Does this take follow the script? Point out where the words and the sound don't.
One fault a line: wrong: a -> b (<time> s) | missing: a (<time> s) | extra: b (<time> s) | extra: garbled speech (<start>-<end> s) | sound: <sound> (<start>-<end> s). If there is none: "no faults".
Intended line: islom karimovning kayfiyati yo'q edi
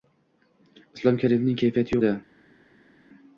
missing: yo'q (2.0 s)